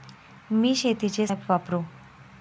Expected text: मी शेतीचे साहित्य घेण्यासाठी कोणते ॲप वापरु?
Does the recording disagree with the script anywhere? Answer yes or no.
yes